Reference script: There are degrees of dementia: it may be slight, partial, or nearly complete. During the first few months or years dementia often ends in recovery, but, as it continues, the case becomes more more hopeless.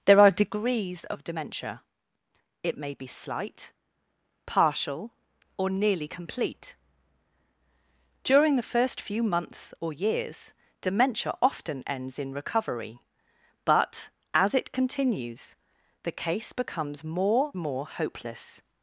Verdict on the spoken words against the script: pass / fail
pass